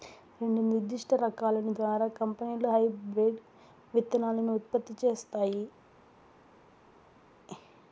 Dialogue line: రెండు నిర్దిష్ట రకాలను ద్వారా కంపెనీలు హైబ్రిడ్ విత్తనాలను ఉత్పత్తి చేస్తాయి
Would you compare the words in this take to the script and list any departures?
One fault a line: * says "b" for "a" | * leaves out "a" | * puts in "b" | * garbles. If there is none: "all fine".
all fine